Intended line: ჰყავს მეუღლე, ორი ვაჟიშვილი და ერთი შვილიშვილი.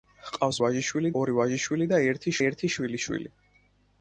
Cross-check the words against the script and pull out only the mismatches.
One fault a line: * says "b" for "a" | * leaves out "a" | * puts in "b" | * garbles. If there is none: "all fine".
* says "ვაჟიშვილი" for "მეუღლე"
* puts in "ერთი"